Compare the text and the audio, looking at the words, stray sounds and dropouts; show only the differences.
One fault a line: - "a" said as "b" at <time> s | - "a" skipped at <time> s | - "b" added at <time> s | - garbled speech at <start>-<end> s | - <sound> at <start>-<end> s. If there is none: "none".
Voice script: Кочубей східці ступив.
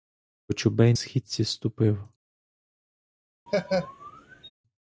- laugh at 3.5-4.5 s